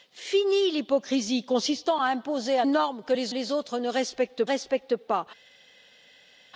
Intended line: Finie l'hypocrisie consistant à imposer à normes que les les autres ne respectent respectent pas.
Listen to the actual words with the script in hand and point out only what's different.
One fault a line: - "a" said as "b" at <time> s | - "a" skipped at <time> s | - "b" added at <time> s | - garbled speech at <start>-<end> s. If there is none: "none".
none